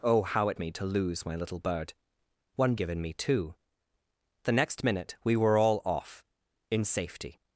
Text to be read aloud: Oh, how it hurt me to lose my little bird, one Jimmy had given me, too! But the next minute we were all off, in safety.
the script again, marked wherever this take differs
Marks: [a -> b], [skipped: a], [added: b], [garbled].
Oh, how it [skipped: hurt] me to lose my little bird, one [skipped: Jimmy had] given me, too! [skipped: But] the next minute we were all off, in safety.